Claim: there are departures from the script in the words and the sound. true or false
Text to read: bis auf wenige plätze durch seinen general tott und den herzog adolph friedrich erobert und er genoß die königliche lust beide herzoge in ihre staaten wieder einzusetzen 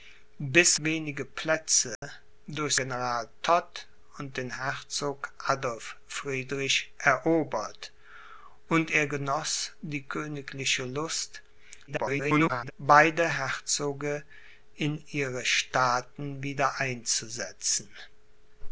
true